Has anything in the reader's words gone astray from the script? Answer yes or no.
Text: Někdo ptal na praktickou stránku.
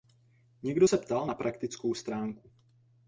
yes